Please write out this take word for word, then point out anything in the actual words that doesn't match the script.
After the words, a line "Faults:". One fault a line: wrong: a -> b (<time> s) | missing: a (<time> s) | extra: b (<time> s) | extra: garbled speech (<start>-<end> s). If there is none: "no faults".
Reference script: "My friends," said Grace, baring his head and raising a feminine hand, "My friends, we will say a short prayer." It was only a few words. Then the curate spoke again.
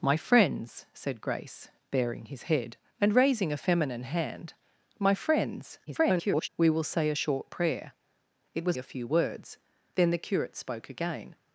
"My friends," said Grace, baring his head and raising a feminine hand, "My friends, [garbled] we will say a short prayer." It was a few words. Then the curate spoke again.
Faults:
extra: garbled speech (5.9-6.5 s)
missing: only (8.8 s)